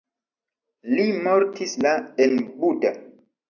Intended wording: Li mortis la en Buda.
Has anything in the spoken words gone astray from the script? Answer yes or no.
no